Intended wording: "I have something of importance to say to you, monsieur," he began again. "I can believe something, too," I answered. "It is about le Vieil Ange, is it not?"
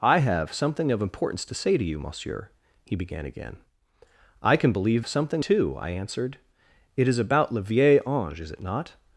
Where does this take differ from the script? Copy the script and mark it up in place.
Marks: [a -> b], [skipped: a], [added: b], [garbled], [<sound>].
"I have something of importance to say to you, monsieur," he began again. "I can believe something, too," I answered. "It is about le Vieil Ange, is it not?"